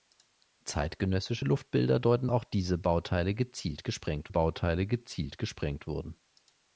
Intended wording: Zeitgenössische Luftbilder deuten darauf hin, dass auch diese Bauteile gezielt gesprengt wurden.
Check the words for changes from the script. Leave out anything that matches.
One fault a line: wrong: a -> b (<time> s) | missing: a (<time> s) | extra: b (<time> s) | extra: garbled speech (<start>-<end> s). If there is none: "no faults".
wrong: darauf hin dass auch diese -> auch diese Bauteile gezielt gesprengt (2.3 s)